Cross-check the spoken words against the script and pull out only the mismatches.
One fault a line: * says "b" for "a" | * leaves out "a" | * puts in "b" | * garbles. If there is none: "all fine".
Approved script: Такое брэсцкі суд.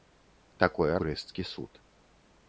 all fine